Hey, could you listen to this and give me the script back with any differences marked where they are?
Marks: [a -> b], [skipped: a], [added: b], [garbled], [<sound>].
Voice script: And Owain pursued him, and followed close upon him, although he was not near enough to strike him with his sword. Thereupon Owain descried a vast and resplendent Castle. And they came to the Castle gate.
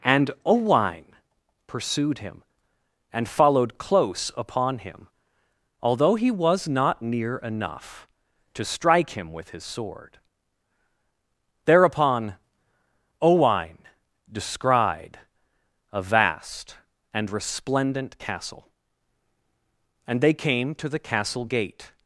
And Owain pursued him, and followed close upon him, although he was not near enough to strike him with his sword. Thereupon Owain descried a vast and resplendent Castle. And they came to the Castle gate.